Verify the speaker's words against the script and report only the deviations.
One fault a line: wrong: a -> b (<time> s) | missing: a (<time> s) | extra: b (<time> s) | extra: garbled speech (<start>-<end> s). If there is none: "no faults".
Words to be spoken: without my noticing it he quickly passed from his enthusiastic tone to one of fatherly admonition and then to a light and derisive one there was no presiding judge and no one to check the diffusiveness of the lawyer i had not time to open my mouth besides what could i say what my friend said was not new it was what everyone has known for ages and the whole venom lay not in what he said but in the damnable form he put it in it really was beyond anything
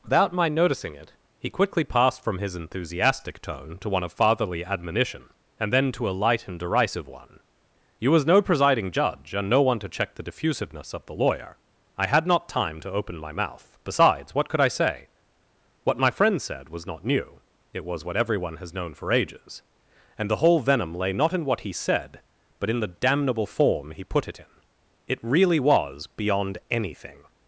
wrong: there -> you (8.0 s)